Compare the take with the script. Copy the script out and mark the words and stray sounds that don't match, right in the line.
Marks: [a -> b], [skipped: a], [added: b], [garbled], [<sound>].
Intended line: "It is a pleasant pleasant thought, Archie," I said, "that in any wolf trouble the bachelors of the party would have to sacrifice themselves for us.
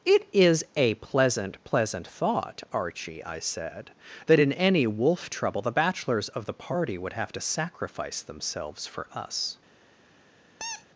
"It is a pleasant pleasant thought, Archie," I said, "that in any wolf trouble the bachelors of the party would have to sacrifice themselves for us. [squeak]